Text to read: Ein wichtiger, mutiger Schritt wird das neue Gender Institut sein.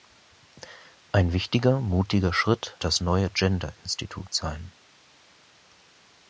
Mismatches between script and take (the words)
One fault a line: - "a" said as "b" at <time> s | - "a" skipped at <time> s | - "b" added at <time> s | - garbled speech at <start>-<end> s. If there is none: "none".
- "wird" skipped at 2.8 s